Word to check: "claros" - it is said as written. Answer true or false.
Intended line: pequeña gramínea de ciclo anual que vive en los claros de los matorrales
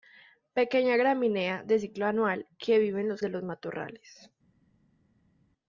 false